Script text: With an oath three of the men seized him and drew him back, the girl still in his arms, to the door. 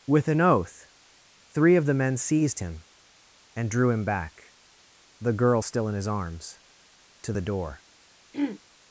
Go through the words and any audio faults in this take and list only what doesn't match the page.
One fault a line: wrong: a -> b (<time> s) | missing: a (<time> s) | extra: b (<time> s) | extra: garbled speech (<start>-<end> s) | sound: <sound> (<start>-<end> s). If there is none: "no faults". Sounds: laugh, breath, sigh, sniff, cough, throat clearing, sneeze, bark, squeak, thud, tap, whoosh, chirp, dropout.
sound: throat clearing (8.3-8.6 s)